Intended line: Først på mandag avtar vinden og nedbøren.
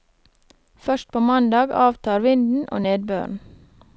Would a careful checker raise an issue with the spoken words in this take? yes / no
no